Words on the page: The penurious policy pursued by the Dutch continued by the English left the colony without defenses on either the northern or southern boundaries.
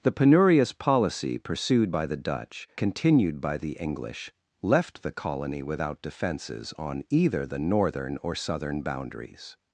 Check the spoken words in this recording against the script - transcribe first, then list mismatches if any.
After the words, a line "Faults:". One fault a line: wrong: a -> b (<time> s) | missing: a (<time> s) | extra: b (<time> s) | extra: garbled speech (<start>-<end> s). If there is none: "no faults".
The penurious policy pursued by the Dutch continued by the English left the colony without defenses on either the northern or southern boundaries.
Faults:
no faults